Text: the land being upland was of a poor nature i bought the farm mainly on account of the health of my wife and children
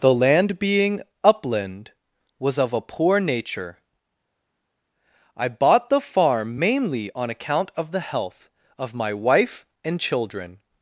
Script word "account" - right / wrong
right